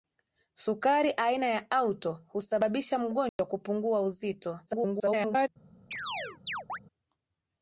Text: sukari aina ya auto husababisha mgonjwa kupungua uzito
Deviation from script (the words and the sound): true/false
true